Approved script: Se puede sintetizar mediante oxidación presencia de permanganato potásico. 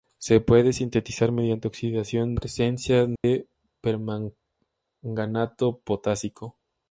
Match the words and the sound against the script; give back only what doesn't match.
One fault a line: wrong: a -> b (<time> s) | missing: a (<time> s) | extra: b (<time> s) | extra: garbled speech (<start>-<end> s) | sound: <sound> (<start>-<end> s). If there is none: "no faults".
sound: dropout (3.2-3.2 s)